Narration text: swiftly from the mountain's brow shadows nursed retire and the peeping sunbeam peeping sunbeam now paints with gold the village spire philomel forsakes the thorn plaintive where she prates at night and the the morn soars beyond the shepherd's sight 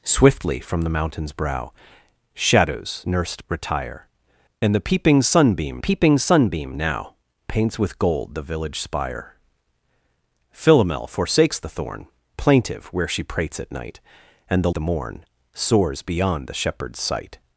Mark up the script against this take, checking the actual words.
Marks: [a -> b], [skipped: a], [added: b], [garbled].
swiftly from the mountain's brow shadows nursed retire and the peeping sunbeam peeping sunbeam now paints with gold the village spire philomel forsakes the thorn plaintive where she prates at night and the the morn soars beyond the shepherd's sight